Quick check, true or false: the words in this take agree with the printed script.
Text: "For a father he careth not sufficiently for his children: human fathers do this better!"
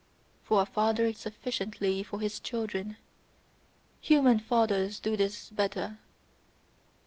false